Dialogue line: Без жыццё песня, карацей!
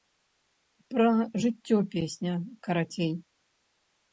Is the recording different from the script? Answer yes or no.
yes